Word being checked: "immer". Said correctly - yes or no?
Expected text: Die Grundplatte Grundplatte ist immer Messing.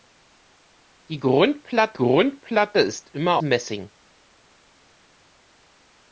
yes